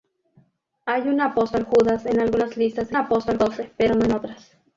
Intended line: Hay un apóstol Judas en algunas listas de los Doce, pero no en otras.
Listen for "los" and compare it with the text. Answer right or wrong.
wrong